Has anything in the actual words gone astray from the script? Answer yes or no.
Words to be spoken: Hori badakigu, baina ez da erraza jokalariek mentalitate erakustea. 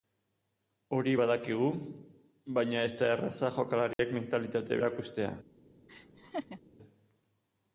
no